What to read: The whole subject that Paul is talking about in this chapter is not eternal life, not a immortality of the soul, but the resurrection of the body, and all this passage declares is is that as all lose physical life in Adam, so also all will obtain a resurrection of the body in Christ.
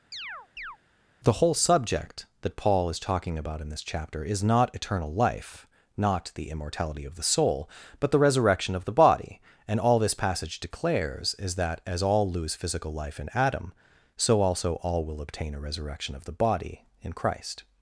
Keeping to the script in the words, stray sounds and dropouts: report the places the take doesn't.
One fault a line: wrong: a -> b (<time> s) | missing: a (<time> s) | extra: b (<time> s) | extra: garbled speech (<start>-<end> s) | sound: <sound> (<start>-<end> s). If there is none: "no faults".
sound: chirp (0.1-0.8 s)
wrong: a -> the (6.3 s)
missing: is (11.5 s)